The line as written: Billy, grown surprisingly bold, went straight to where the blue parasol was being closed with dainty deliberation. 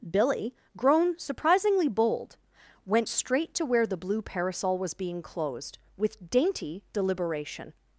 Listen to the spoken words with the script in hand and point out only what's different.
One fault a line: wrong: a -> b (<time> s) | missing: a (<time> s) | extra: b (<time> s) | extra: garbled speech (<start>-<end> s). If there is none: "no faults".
no faults